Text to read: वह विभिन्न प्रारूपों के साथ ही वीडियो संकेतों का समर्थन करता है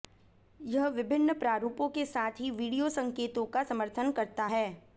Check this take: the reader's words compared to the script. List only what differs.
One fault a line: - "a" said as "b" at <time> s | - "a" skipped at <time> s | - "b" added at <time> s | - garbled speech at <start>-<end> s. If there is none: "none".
- "वह" said as "यह" at 0.6 s